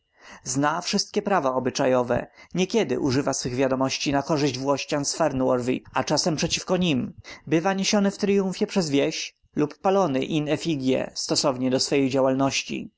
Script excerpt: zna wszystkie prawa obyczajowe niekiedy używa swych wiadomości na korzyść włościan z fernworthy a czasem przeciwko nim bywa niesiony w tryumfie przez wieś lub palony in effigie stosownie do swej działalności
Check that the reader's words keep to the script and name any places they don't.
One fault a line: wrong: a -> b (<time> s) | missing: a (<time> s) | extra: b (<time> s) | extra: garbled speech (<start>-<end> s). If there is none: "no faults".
no faults